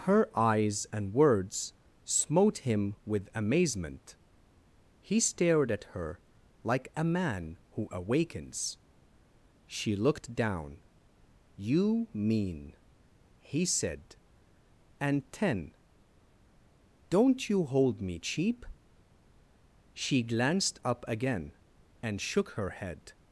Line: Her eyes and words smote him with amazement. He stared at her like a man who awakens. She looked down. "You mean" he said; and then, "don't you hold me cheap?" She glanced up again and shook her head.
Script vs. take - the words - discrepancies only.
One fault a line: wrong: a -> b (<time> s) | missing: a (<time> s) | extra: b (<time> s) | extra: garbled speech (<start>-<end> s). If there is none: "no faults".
wrong: then -> ten (15.3 s)